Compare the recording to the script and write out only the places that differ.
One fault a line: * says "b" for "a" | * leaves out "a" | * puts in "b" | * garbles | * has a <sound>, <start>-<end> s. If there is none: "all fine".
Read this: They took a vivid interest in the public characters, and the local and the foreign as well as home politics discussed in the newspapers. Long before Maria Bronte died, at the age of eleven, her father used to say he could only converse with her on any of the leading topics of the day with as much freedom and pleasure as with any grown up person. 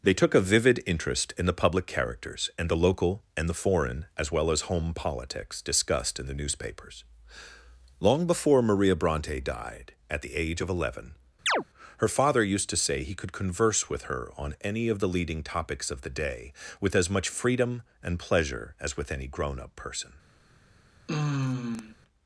* has a chirp, 11.5-11.6 s
* leaves out "only"
* has a sigh, 21.1-22.0 s